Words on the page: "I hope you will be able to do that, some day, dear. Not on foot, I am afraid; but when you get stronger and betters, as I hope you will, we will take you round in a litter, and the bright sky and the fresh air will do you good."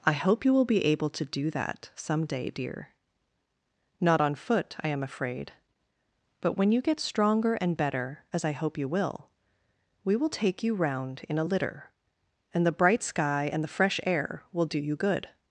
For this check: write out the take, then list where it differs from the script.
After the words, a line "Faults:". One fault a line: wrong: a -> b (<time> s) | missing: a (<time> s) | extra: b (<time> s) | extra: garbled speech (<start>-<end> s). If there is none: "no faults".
"I hope you will be able to do that, some day, dear. Not on foot, I am afraid; but when you get stronger and better, as I hope you will, we will take you round in a litter, and the bright sky and the fresh air will do you good."
Faults:
wrong: betters -> better (7.8 s)